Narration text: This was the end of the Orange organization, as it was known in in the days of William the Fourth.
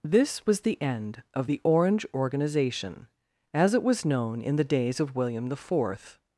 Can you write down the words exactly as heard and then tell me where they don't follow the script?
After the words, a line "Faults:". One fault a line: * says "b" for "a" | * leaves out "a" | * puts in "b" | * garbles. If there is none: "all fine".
This was the end of the Orange organization, as it was known in the days of William the Fourth.
Faults:
* leaves out "in"